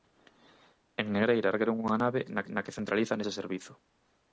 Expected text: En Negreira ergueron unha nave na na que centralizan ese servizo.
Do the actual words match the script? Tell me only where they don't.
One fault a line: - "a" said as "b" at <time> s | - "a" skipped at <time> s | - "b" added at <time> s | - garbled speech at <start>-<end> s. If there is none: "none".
none